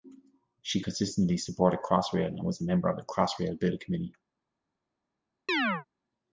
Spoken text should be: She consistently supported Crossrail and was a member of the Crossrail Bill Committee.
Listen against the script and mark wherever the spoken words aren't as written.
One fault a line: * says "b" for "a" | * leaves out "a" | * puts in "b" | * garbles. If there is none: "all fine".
all fine